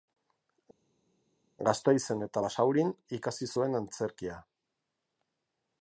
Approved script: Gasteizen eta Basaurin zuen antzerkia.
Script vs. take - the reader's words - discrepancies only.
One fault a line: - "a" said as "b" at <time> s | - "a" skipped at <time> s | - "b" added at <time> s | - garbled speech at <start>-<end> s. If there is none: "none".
- "ikasi" added at 3.2 s